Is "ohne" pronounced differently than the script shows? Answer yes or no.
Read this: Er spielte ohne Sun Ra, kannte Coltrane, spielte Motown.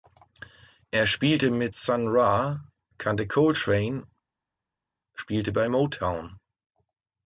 yes